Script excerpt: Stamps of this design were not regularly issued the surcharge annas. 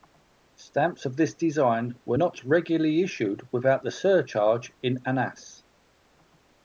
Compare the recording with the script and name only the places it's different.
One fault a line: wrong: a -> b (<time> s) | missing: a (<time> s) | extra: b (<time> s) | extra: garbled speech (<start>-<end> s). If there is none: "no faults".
extra: without (3.5 s)
extra: in (4.8 s)